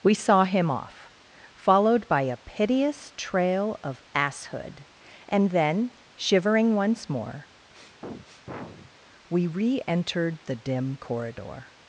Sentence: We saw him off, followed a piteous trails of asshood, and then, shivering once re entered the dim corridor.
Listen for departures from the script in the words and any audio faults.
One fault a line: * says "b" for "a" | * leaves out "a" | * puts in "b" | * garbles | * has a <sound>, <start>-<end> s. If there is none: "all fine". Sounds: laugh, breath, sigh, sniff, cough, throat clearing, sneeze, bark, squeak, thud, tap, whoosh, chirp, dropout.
* puts in "by"
* says "trail" for "trails"
* puts in "more we"
* has a sniff, 7.7-8.9 s